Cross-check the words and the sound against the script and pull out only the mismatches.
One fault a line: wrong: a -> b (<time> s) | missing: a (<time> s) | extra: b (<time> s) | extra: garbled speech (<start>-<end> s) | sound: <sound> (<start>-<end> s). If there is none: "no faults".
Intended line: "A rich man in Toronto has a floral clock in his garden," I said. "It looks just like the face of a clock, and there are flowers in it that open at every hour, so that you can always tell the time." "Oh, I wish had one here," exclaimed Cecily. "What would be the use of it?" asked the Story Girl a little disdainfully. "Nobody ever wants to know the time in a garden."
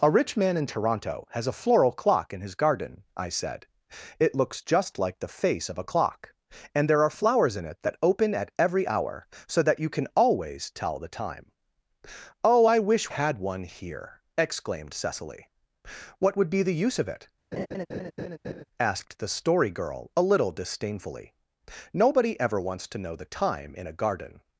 sound: laugh (17.5-18.6 s)